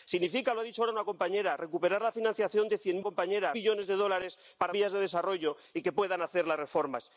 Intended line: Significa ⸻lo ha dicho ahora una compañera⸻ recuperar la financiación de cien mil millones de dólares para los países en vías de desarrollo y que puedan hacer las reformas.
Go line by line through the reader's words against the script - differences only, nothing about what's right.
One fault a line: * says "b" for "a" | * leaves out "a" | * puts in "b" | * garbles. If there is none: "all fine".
* says "compañera" for "mil"
* leaves out "los países en"